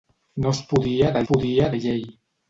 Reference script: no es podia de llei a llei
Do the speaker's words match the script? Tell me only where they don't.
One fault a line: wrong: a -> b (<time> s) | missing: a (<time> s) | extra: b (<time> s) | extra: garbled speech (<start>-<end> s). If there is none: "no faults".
wrong: llei -> podia (1.3 s)